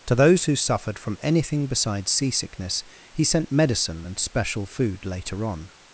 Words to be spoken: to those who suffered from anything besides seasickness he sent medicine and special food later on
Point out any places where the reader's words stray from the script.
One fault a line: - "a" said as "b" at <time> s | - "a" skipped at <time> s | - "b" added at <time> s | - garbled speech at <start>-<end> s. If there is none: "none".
none